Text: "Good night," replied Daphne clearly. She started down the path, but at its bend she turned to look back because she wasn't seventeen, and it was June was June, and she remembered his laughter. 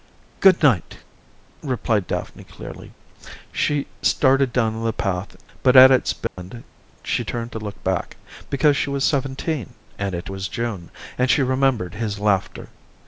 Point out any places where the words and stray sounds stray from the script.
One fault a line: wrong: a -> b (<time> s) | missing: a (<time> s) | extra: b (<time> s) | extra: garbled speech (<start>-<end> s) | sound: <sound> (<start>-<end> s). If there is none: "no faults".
sound: dropout (6.3-6.4 s)
wrong: wasn't -> was (8.9 s)
missing: was June (10.9 s)